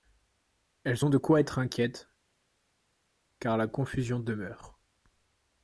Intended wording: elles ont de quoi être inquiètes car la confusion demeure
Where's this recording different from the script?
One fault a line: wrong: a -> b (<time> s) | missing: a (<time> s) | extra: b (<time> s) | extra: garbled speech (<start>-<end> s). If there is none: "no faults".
no faults